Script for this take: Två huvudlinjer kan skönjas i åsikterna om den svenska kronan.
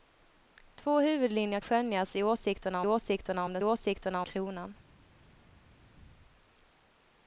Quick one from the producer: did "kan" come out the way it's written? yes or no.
no